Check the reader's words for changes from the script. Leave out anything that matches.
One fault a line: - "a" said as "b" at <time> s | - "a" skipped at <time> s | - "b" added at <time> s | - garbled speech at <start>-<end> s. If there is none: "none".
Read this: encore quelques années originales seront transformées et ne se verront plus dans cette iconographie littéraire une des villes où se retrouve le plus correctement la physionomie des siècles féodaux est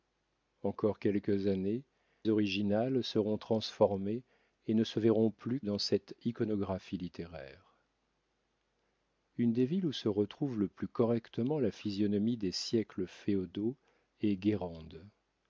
none